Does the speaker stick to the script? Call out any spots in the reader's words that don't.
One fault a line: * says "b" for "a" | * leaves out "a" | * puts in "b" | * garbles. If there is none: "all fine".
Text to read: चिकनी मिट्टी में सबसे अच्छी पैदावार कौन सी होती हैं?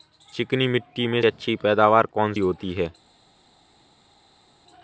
* leaves out "सबसे"
* leaves out "सी"